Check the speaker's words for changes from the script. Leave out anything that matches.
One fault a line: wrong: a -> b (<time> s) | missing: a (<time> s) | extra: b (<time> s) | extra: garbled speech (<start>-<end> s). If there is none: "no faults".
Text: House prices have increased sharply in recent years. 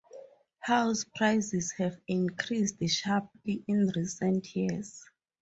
no faults